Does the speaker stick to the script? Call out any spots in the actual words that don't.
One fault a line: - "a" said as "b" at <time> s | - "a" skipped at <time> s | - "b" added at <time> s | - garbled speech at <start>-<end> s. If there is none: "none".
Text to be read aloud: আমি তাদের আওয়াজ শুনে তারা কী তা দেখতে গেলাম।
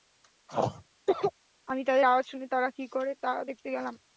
- "করে" added at 3.0 s